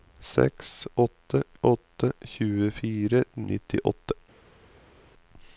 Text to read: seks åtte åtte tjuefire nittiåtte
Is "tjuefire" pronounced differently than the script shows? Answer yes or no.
no